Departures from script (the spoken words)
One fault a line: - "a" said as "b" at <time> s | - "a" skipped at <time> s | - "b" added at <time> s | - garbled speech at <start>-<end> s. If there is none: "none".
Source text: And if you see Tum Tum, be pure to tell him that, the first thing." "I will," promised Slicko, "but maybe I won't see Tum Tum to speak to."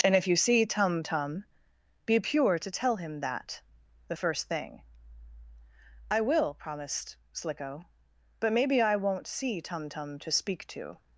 none